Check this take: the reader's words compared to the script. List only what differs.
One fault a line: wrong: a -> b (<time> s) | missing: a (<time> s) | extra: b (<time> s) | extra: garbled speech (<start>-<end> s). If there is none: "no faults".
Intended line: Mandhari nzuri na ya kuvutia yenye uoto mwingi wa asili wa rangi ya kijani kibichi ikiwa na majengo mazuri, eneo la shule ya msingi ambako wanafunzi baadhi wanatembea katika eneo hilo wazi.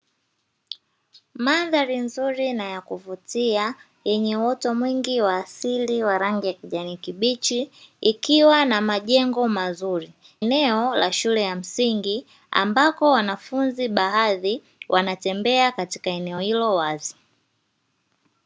no faults